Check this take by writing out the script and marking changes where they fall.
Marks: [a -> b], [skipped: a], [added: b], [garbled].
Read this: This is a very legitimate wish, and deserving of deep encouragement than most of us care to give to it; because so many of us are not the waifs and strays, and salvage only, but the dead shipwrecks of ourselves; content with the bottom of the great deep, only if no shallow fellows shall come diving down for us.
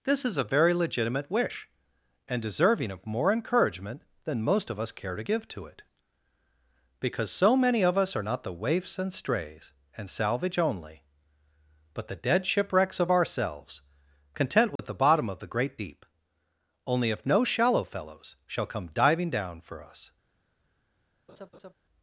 This is a very legitimate wish, and deserving of [deep -> more] encouragement than most of us care to give to it; because so many of us are not the waifs and strays, and salvage only, but the dead shipwrecks of ourselves; content with the bottom of the great deep, only if no shallow fellows shall come diving down for us.